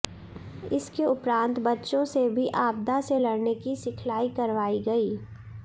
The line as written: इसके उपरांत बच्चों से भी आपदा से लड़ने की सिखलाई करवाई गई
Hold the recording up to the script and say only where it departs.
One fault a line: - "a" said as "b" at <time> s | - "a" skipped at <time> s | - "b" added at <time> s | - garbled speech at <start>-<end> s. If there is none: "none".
none